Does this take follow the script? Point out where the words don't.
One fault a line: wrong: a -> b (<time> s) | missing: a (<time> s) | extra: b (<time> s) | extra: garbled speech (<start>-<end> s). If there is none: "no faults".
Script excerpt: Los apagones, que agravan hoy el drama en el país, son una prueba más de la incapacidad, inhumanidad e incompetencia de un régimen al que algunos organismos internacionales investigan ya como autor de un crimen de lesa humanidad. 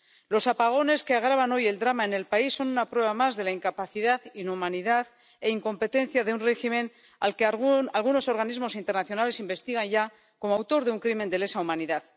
no faults